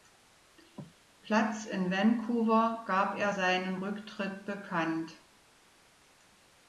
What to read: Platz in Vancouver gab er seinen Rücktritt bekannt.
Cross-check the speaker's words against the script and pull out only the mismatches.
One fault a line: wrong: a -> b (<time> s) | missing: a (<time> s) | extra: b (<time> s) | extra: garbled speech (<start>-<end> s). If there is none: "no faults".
no faults